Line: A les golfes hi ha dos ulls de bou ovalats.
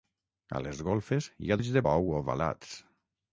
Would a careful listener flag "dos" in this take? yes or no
yes